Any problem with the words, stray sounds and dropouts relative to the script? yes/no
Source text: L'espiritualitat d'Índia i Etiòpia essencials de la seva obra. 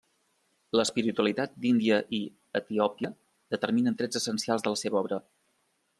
yes